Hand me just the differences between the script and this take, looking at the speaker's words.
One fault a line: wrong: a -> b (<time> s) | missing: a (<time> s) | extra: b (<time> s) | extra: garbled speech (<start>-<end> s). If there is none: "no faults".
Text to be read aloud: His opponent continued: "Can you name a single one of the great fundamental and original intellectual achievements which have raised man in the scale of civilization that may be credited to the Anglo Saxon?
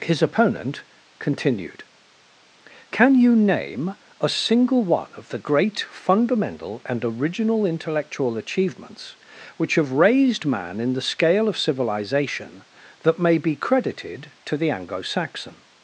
no faults